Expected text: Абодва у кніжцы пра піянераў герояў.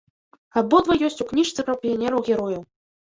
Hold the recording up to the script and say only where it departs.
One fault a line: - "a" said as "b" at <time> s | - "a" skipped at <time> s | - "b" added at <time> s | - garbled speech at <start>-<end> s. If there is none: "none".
- "ёсць" added at 1.1 s